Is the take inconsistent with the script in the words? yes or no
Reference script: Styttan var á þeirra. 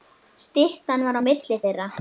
yes